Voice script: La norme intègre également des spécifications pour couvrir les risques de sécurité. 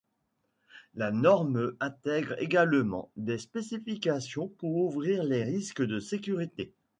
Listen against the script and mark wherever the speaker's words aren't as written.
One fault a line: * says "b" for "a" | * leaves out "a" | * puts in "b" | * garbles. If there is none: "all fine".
all fine